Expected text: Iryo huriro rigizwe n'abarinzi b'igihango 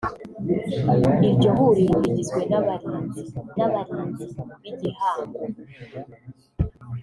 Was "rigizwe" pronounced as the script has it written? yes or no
yes